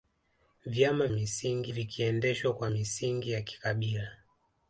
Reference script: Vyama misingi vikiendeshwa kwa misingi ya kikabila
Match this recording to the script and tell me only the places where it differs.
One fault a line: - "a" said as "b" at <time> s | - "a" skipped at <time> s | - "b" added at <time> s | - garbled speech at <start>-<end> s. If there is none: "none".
none